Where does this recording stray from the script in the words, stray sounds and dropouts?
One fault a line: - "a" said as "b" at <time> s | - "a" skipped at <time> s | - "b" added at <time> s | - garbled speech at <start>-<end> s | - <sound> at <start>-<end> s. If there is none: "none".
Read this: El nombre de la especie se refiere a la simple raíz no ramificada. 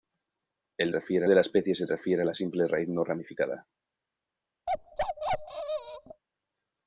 - "nombre" said as "refiere" at 0.9 s
- bark at 4.7-6.2 s